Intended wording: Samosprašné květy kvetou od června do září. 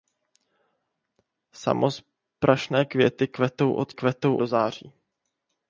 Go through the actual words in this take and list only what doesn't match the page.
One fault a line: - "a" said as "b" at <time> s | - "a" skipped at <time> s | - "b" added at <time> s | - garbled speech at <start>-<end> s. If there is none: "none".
- "června" said as "kvetou" at 3.9 s